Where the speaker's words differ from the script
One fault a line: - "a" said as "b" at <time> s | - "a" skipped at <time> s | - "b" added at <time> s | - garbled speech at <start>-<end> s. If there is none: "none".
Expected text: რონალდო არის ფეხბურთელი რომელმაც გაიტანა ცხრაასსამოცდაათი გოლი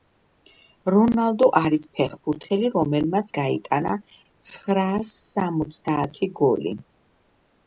none